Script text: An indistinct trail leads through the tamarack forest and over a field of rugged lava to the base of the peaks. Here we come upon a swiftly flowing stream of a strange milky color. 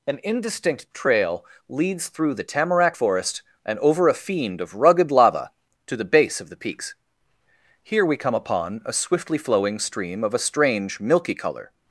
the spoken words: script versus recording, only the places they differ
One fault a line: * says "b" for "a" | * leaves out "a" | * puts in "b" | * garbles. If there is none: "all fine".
* says "fiend" for "field"